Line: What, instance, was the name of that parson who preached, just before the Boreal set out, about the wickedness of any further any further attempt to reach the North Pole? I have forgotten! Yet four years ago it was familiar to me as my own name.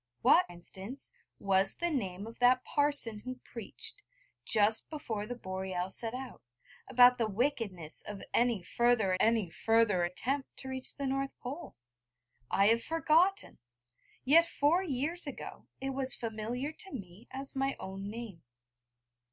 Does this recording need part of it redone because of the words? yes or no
no